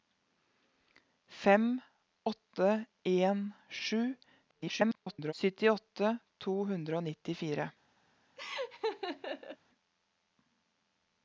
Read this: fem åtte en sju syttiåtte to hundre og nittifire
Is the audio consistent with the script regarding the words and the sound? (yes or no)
no